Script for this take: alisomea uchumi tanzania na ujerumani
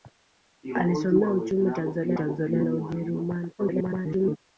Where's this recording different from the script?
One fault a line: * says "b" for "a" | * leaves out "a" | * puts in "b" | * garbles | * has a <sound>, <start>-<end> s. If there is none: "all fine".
* puts in "tanzania"
* garbles